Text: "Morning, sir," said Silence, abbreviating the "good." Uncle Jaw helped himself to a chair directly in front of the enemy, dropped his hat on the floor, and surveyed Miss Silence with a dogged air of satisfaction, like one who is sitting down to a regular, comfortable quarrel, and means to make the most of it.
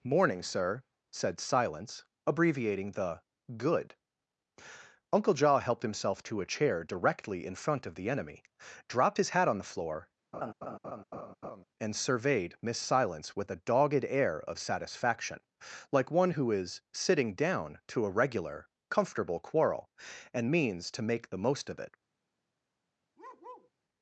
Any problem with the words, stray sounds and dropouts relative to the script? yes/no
yes